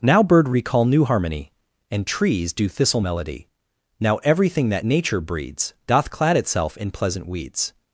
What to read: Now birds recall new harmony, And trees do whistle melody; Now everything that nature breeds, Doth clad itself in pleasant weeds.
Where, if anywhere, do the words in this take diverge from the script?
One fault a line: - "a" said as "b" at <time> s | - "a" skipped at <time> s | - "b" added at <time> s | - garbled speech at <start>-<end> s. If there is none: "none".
- "birds" said as "bird" at 0.2 s
- "whistle" said as "thistle" at 2.7 s